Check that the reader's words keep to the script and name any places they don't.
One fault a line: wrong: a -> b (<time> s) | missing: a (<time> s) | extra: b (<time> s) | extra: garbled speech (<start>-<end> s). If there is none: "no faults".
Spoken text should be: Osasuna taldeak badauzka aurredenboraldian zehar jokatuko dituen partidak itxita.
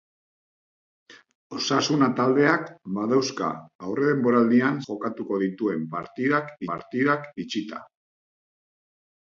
missing: zehar (4.8 s)
extra: partidak (6.7 s)